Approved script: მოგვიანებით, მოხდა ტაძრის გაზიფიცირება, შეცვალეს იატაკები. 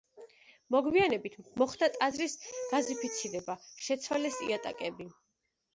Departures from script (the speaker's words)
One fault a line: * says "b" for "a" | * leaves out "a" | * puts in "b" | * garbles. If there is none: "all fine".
all fine